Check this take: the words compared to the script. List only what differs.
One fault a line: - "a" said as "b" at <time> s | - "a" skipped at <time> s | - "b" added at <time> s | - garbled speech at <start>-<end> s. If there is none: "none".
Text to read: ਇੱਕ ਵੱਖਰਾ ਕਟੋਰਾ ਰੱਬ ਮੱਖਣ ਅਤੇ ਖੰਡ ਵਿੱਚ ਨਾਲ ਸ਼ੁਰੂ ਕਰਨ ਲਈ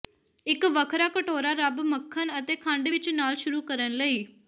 none